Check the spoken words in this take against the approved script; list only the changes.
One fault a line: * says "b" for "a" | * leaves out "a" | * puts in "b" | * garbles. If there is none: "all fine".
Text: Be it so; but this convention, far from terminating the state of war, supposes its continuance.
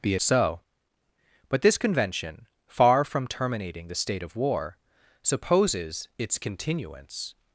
* leaves out "it"